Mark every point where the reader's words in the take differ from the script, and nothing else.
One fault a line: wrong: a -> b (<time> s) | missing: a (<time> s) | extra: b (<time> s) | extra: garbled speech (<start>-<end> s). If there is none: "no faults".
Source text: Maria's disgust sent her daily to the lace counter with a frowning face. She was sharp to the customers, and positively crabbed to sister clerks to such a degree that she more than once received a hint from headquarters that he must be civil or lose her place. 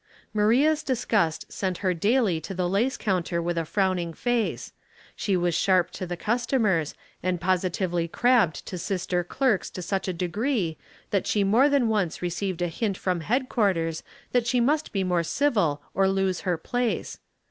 wrong: he -> she (14.5 s)
extra: more (15.0 s)